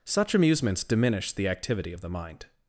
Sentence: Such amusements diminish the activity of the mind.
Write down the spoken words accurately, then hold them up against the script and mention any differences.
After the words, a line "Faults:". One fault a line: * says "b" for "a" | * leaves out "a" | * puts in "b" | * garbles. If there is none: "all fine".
Such amusements diminish the activity of the mind.
Faults:
all fine